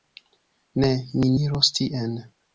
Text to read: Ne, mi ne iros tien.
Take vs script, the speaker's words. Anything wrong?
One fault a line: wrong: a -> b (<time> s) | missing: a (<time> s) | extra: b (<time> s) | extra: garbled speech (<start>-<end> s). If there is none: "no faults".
missing: ne (1.3 s)